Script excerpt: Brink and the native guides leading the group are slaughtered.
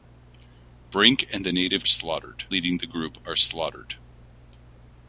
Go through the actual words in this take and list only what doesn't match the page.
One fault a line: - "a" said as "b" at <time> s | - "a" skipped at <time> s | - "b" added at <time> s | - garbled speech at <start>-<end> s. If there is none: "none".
- "guides" said as "slaughtered" at 1.9 s